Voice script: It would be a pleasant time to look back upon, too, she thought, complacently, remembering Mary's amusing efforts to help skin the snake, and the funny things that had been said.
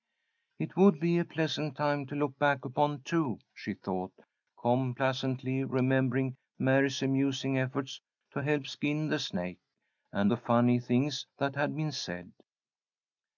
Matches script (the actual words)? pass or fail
pass